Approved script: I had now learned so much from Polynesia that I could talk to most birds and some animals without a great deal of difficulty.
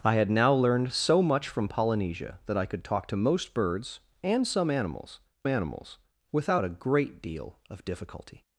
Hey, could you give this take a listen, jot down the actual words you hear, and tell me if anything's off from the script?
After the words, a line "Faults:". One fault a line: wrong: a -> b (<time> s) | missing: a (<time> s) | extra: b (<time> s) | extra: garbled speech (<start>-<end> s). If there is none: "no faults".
I had now learned so much from Polynesia that I could talk to most birds and some animals animals without a great deal of difficulty.
Faults:
extra: animals (5.5 s)